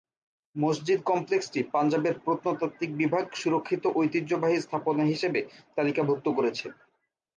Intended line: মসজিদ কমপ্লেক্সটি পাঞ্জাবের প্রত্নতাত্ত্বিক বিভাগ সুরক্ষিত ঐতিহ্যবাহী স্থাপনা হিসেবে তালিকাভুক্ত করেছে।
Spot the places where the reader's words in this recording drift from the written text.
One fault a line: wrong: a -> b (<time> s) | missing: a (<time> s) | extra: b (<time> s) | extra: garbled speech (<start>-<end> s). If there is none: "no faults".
no faults